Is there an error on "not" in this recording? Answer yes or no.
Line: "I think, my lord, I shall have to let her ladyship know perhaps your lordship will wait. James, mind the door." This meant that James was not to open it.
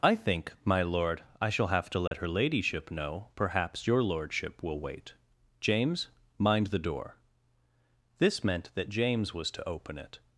yes